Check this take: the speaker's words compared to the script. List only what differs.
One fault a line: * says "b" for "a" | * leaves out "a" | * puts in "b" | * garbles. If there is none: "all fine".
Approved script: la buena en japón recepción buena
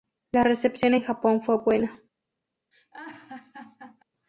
* says "recepción" for "buena"
* says "fue" for "recepción"